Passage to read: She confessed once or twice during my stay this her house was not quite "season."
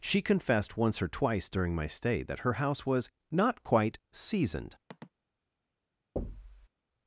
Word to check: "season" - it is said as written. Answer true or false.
false